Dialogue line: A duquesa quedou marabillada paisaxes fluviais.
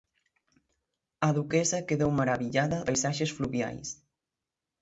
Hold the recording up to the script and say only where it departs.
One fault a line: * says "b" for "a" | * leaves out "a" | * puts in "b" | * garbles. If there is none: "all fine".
all fine